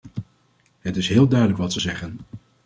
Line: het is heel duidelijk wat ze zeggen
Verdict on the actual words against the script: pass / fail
pass